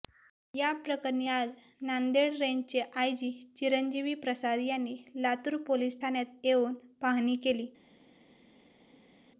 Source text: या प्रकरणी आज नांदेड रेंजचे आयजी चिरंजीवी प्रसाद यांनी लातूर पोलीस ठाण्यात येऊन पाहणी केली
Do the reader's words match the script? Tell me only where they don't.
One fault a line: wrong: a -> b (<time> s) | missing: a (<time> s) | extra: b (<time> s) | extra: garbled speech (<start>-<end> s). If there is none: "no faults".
no faults